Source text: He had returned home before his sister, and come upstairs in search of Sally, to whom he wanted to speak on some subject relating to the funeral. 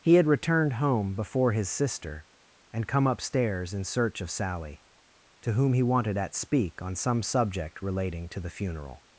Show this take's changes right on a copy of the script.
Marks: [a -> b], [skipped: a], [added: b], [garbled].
He had returned home before his sister, and come upstairs in search of Sally, to whom he wanted [to -> at] speak on some subject relating to the funeral.